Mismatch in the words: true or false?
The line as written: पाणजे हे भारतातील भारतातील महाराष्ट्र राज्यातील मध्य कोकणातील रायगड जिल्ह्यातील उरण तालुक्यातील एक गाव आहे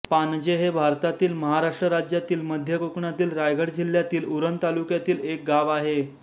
true